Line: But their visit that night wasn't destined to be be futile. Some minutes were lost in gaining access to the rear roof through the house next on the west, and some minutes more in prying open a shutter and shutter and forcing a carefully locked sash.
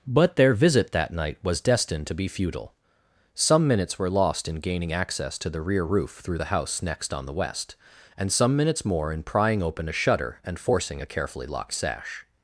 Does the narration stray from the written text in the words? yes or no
yes